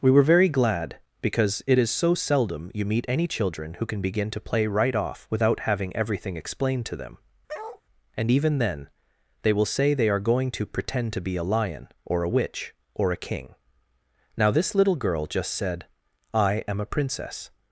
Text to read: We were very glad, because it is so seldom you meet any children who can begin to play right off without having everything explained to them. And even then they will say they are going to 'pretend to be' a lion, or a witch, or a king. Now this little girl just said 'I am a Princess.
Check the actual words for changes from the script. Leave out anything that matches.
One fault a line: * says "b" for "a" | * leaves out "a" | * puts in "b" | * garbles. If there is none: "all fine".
all fine